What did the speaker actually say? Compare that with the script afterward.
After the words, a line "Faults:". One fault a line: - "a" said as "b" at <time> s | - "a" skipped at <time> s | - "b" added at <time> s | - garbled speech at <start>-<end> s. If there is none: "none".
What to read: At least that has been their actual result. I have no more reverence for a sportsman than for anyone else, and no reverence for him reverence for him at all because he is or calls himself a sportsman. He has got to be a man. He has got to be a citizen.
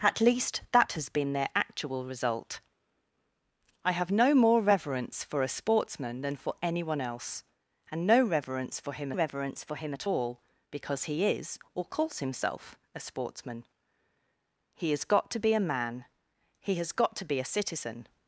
At least that has been their actual result. I have no more reverence for a sportsman than for anyone else, and no reverence for him reverence for him at all because he is or calls himself a sportsman. He has got to be a man. He has got to be a citizen.
Faults:
none